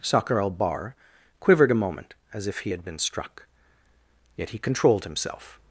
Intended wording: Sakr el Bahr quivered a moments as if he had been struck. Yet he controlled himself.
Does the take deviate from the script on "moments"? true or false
true